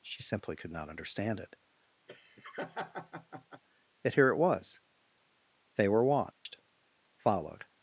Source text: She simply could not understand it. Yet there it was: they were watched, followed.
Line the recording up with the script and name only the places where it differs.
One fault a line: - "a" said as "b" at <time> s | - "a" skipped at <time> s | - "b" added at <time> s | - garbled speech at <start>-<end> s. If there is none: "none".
- "there" said as "here" at 4.1 s